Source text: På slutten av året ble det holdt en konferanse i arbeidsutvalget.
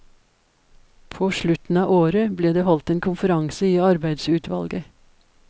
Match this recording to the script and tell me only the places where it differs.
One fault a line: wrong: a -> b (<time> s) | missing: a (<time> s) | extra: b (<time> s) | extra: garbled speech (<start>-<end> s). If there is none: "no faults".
no faults